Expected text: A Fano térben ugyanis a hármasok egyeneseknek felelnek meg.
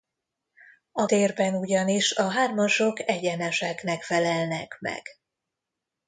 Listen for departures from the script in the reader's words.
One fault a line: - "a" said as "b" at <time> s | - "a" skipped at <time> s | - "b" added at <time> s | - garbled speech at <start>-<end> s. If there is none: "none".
- "Fano" skipped at 1.1 s